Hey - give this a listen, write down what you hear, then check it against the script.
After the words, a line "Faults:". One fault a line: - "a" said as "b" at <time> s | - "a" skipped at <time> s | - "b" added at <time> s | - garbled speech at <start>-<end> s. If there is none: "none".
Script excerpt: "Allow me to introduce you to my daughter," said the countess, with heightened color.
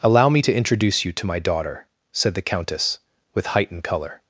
"Allow me to introduce you to my daughter," said the countess, with heightened color.
Faults:
none